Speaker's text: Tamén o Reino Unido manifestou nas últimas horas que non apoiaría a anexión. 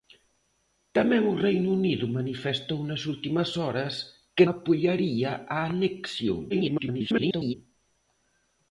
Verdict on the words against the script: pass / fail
fail